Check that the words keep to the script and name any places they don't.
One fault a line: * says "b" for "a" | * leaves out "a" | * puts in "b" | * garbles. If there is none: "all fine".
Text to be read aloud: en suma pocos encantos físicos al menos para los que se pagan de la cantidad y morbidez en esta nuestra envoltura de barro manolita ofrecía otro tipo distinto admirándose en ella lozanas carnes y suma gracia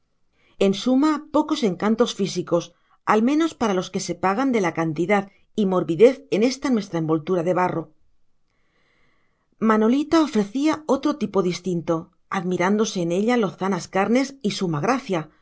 all fine